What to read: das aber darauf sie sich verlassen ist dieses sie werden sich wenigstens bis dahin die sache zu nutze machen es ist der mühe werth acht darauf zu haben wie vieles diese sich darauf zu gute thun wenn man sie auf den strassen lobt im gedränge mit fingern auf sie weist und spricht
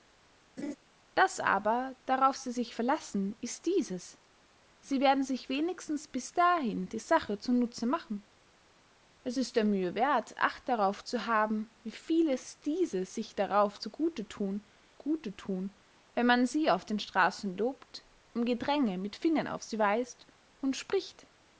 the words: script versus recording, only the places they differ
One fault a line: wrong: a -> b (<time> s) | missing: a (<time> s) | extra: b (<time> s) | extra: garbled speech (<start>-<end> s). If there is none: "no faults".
extra: gute thun (15.0 s)